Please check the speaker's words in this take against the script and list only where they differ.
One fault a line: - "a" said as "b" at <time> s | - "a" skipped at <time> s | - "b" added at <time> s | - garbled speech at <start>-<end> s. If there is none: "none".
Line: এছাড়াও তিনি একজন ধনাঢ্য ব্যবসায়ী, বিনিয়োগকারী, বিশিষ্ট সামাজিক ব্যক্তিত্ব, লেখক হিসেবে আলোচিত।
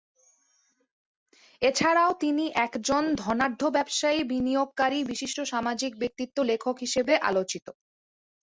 none